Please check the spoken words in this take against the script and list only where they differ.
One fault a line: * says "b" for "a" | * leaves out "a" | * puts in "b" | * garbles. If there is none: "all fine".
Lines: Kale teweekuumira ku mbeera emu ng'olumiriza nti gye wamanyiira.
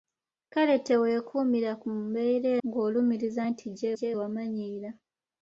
* leaves out "emu"
* puts in "gye"